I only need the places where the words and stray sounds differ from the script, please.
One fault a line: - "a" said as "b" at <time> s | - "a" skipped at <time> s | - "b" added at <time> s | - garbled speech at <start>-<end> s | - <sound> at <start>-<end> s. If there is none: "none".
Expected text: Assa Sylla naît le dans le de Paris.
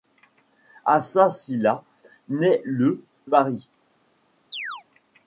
- "dans le de" skipped at 3.0 s
- chirp at 4.5-4.8 s